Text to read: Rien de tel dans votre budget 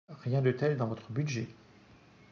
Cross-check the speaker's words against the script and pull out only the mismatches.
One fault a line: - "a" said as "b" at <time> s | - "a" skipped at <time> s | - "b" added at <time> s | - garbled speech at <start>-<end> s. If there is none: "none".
none